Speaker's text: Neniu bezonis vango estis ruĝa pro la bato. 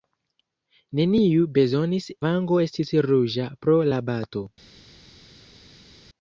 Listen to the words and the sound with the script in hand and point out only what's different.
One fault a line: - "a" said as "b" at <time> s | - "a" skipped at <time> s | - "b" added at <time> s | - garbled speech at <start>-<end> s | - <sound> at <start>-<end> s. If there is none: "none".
none